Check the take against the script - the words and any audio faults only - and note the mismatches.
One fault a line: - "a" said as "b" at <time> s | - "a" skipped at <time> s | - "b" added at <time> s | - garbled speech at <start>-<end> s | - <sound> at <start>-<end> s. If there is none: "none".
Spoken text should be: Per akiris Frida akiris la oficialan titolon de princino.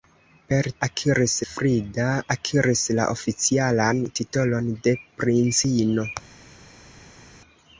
none